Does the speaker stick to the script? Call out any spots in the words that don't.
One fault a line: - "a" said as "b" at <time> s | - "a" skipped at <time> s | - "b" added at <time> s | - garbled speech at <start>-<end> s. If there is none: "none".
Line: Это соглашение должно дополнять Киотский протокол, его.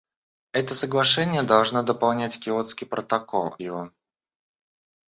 none